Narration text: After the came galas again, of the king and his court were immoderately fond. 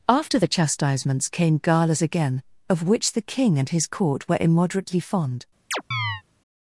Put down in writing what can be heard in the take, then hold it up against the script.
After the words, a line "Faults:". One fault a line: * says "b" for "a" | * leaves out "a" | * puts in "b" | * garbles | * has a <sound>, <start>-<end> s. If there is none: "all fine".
After the chastisements came galas again, of which the king and his court were immoderately fond.
Faults:
* puts in "chastisements"
* puts in "which"
* has a chirp, 5.7-6.2 s